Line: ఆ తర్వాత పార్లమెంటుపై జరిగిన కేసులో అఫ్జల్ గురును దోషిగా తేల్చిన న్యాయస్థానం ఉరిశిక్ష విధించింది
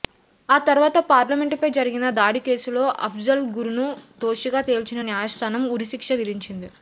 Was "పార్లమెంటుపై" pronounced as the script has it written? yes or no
yes